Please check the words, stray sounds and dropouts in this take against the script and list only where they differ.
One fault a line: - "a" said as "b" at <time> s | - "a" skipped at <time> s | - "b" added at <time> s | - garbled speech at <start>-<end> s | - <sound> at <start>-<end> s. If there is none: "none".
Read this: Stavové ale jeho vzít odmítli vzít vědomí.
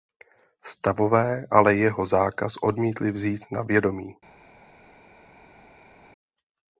- "vzít" said as "zákaz" at 2.0 s
- "na" added at 3.5 s